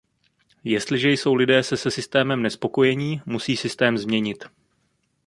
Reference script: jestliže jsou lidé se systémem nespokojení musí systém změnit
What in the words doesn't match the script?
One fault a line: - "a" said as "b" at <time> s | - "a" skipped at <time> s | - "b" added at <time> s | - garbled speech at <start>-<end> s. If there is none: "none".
- "se" added at 1.8 s